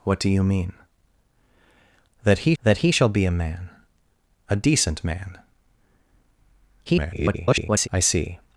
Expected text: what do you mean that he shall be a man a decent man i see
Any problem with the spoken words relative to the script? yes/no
yes